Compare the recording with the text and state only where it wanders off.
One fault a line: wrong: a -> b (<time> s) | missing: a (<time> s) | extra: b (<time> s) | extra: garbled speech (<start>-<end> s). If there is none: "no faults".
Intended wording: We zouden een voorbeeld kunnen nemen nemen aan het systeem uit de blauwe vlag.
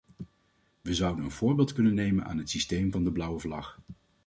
missing: nemen (2.2 s)
wrong: uit -> van (2.9 s)